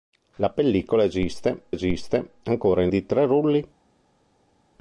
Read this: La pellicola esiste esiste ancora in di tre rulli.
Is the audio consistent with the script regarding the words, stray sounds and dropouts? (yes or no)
yes